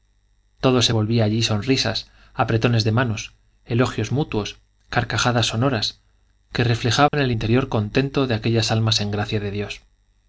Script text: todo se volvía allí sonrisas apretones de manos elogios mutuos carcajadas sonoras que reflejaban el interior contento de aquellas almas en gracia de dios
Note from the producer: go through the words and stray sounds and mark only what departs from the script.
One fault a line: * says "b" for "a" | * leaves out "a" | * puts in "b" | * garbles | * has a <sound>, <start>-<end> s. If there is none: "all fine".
* has a dropout, 7.1-7.1 s